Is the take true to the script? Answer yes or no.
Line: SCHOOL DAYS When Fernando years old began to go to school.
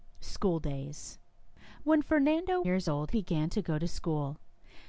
yes